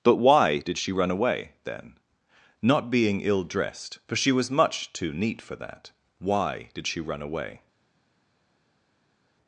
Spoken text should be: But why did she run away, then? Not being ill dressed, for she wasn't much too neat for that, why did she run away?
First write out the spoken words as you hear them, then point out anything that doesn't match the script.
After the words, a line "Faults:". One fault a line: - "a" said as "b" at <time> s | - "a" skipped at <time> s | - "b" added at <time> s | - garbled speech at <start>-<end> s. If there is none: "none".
But why did she run away, then? Not being ill dressed, for she was much too neat for that, why did she run away?
Faults:
- "wasn't" said as "was" at 4.3 s